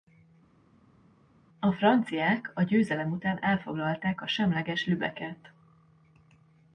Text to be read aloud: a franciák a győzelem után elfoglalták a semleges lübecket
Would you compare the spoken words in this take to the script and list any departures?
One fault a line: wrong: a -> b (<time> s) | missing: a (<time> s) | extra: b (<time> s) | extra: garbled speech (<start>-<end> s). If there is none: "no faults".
no faults